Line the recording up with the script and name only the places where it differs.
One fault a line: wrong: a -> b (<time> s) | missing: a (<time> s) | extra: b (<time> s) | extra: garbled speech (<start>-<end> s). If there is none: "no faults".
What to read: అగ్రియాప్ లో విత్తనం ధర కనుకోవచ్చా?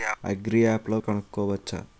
missing: విత్తనం ధర (1.0 s)